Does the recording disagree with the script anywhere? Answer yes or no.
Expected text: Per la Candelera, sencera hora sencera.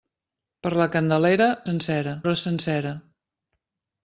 no